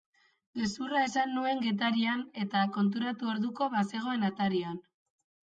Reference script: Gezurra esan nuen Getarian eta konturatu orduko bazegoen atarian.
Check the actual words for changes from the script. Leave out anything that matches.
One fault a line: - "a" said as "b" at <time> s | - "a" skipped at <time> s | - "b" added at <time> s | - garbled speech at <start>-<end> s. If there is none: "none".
none